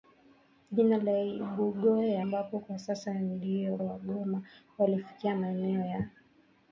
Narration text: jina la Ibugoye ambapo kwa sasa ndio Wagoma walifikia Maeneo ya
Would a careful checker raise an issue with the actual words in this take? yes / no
no